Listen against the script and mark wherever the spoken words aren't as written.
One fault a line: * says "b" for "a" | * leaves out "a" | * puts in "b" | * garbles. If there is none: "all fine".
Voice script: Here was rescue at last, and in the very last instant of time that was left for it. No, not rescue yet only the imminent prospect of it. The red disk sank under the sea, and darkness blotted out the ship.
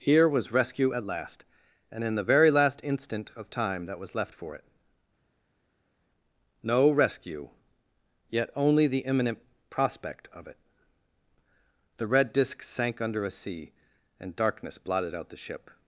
* leaves out "not"
* says "a" for "the"